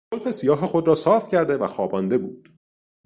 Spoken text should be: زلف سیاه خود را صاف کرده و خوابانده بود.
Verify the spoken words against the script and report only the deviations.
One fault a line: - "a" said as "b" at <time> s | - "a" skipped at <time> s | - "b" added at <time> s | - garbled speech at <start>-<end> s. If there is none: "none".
none